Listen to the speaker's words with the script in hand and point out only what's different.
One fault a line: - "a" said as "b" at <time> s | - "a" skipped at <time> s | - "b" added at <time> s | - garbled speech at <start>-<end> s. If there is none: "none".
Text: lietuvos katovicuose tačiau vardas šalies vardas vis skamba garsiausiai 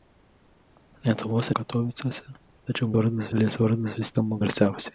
none